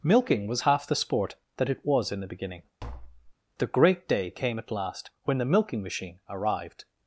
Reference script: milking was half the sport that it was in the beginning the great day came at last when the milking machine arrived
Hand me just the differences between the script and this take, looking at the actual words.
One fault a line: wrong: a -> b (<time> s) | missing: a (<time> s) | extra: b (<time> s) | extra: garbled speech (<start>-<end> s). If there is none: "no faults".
no faults